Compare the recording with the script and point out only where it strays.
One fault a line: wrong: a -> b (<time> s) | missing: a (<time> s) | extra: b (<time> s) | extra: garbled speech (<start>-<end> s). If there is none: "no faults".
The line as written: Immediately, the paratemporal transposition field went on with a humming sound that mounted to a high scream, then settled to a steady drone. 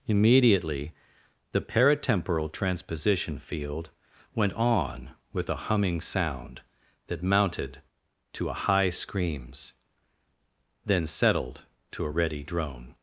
wrong: scream -> screams (8.9 s)
wrong: steady -> ready (12.1 s)